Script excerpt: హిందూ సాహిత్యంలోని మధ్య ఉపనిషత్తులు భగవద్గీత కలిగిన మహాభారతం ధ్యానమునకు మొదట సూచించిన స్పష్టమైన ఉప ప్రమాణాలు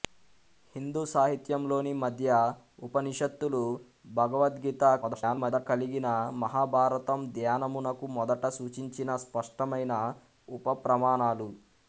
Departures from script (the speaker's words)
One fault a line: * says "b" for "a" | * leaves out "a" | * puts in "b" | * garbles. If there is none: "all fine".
* garbles